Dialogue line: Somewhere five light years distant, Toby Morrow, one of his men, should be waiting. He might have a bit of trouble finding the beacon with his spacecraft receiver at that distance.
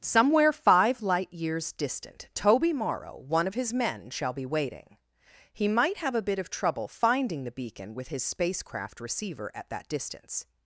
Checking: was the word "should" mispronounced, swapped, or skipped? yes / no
yes